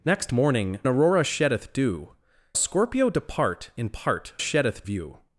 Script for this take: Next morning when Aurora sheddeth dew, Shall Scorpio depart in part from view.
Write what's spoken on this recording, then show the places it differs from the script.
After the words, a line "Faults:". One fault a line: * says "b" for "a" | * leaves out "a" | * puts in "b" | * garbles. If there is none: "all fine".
Next morning Aurora sheddeth dew, Scorpio depart in part sheddeth view.
Faults:
* leaves out "when"
* leaves out "Shall"
* says "sheddeth" for "from"